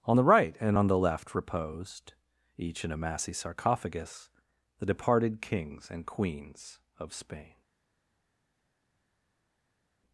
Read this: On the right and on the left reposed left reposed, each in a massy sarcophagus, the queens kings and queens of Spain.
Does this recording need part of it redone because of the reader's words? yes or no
yes